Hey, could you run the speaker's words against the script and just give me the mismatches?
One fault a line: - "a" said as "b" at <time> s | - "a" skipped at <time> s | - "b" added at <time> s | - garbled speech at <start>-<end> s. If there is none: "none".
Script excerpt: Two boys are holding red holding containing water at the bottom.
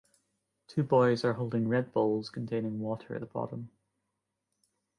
- "holding" said as "bowls" at 1.9 s